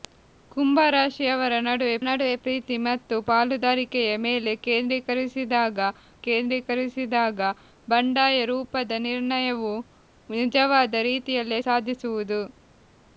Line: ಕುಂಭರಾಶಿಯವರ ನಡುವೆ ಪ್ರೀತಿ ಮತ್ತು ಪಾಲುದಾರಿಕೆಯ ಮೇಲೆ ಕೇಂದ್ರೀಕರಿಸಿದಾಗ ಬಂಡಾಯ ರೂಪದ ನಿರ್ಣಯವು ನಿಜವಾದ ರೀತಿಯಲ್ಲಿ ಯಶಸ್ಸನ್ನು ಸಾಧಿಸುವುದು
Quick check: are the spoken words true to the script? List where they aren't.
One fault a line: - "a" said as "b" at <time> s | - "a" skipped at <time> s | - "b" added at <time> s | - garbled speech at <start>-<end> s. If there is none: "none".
- "ನಡುವೆ" added at 2.1 s
- "ಕೇಂದ್ರೀಕರಿಸಿದಾಗ" added at 6.3 s
- "ಯಶಸ್ಸನ್ನು" skipped at 11.6 s